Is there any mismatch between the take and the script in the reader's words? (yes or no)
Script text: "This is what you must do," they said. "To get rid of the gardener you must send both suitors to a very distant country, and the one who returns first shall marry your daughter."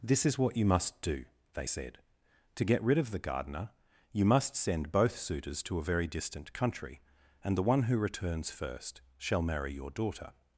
no